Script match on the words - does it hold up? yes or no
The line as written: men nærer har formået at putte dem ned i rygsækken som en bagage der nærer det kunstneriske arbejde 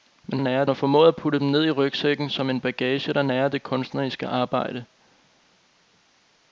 yes